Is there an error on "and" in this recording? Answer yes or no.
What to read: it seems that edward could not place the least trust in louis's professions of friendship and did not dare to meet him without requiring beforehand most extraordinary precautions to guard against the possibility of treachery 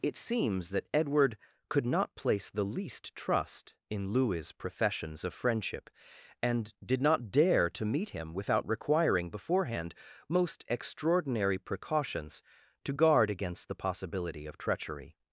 no